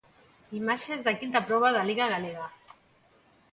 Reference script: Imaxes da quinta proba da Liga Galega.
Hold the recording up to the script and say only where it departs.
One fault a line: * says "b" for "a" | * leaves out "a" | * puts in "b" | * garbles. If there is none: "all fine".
all fine